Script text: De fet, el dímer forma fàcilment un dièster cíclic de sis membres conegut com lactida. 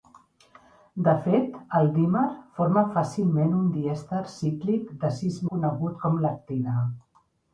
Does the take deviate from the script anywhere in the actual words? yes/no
yes